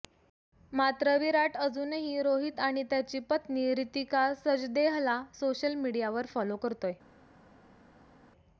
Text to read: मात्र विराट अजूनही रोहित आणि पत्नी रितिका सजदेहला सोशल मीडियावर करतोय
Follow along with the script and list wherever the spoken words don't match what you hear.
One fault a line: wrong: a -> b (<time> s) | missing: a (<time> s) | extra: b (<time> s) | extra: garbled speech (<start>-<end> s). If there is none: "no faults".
extra: त्याची (2.9 s)
extra: फॉलो (6.3 s)